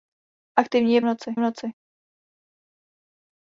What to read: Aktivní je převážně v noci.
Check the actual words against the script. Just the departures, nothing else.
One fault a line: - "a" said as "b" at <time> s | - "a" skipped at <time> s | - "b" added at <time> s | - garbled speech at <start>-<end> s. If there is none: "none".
- "převážně" said as "noci" at 1.0 s